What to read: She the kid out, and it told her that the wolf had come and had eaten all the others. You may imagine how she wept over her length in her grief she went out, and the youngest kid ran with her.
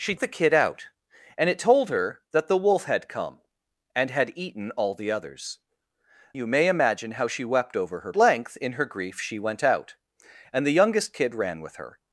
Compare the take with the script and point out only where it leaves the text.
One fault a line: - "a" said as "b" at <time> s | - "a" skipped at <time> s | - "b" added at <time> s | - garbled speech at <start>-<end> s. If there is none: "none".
none